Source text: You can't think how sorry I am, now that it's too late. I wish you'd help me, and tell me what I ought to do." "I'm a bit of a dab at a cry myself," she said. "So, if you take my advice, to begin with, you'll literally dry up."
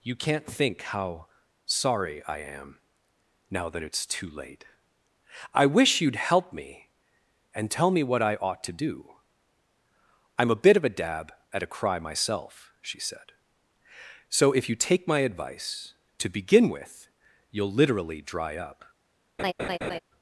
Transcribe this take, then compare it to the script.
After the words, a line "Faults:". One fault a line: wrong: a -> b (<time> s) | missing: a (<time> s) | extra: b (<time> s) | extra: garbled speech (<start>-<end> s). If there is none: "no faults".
You can't think how sorry I am, now that it's too late. I wish you'd help me, and tell me what I ought to do." "I'm a bit of a dab at a cry myself," she said. "So, if you take my advice, to begin with, you'll literally dry up."
Faults:
no faults